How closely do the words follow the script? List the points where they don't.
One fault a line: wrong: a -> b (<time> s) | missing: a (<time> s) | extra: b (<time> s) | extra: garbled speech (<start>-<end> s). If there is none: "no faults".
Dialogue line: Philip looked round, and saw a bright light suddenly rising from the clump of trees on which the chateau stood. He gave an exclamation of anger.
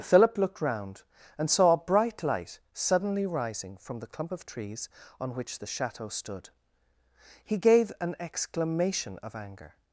no faults